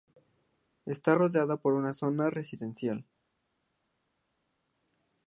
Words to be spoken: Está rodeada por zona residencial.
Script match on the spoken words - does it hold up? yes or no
no